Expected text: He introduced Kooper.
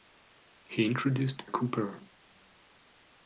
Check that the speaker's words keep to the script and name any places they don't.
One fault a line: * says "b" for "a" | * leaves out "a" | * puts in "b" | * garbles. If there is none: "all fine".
all fine